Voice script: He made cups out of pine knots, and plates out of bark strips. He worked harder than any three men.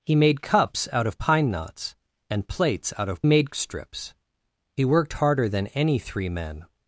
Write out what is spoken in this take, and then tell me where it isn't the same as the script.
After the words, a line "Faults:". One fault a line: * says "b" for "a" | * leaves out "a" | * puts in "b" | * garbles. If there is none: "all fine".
He made cups out of pine knots, and plates out of made strips. He worked harder than any three men.
Faults:
* says "made" for "bark"